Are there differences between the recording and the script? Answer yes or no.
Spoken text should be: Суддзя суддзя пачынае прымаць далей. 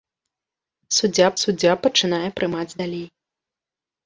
no